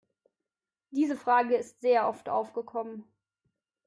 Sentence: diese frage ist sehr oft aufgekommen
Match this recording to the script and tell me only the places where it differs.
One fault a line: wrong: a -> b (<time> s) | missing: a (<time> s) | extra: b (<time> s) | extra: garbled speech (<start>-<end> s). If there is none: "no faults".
no faults